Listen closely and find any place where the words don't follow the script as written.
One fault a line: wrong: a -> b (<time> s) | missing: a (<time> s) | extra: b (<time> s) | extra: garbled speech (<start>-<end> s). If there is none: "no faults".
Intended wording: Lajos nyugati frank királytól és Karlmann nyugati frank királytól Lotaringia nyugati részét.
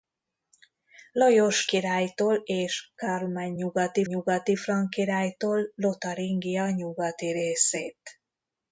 missing: nyugati frank (1.7 s)
extra: nyugati (4.1 s)